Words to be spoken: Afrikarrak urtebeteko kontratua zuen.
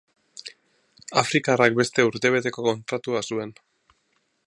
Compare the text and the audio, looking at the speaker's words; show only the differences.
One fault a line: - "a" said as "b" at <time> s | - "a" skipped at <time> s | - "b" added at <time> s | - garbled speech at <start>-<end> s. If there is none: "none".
- "beste" added at 1.8 s